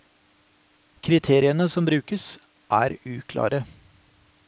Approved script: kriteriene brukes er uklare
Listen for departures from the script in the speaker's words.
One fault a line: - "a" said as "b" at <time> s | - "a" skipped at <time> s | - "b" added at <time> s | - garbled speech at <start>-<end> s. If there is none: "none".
- "som" added at 1.7 s